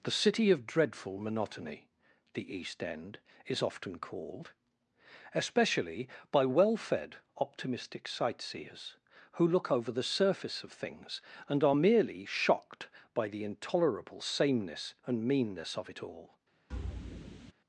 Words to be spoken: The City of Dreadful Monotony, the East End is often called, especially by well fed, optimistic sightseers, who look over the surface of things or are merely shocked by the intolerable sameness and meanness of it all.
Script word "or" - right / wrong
wrong